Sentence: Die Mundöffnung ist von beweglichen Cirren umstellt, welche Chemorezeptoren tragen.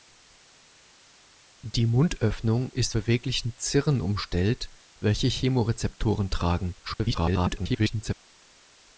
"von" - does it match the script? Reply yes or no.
no